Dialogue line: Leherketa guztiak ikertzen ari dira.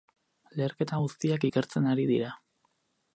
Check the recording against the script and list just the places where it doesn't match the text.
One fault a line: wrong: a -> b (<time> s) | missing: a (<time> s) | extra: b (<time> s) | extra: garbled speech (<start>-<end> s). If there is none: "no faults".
no faults